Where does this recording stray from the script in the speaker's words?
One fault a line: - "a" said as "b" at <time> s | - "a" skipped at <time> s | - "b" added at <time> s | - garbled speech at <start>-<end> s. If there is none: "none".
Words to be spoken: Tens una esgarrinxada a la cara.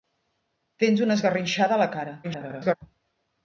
- garbled speech at 2.2-2.8 s